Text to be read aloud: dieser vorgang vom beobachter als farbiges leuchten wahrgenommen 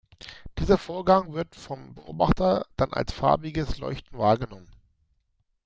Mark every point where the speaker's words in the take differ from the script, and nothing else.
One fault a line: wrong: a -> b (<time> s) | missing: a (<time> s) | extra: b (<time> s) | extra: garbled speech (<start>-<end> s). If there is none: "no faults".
extra: wird (1.3 s)
extra: dann (2.7 s)